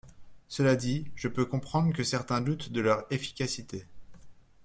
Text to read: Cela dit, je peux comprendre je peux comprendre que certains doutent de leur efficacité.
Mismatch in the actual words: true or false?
true